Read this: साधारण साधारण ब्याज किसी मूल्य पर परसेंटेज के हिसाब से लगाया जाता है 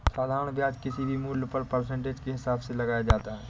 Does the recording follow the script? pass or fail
fail